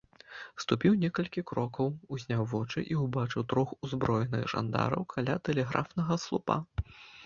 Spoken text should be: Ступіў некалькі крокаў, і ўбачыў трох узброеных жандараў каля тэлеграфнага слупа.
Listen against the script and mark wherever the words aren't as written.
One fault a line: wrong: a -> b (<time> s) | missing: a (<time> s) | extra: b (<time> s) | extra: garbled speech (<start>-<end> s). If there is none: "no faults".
extra: узняў вочы (2.2 s)